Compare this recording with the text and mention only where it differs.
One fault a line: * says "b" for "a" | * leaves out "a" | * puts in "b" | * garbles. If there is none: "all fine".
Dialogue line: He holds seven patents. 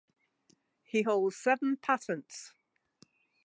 all fine